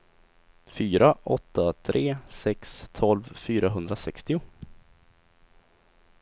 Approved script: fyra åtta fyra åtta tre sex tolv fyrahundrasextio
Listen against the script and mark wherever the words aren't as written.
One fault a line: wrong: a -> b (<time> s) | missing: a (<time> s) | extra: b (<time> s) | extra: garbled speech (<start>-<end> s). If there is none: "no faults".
missing: fyra åtta (1.7 s)